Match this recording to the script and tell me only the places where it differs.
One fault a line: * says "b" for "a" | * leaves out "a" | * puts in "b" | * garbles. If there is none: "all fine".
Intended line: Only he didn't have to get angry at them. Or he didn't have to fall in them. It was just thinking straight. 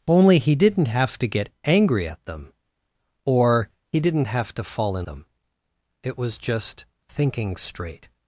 all fine